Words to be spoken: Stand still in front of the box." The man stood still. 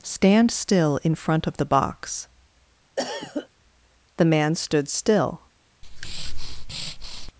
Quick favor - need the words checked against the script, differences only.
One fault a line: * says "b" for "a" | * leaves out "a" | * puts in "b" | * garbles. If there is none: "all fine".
all fine